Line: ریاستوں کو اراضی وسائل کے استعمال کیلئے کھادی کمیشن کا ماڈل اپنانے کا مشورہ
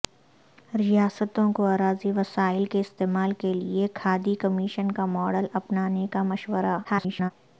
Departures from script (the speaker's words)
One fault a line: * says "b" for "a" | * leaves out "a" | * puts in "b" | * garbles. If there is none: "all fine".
* garbles